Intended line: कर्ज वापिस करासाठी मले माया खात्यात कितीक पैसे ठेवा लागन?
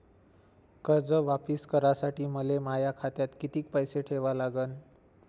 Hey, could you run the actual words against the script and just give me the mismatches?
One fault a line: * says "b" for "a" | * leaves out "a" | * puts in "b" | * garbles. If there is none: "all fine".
all fine